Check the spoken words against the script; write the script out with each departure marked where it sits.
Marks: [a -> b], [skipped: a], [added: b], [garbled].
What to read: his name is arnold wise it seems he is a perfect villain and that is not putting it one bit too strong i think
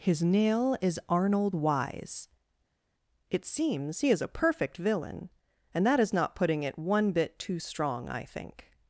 his [name -> nail] is arnold wise it seems he is a perfect villain and that is not putting it one bit too strong i think